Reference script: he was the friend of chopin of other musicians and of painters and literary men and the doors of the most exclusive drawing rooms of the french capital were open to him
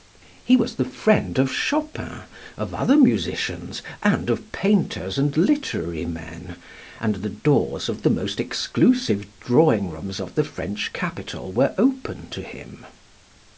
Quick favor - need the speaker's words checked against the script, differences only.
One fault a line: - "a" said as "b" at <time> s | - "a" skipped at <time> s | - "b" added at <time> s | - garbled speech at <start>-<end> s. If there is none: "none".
none